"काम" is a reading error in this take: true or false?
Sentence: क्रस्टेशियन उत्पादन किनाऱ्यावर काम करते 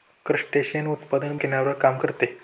false